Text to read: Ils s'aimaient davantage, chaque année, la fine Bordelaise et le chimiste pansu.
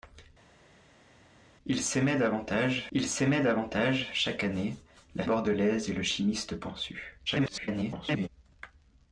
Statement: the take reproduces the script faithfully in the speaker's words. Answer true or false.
false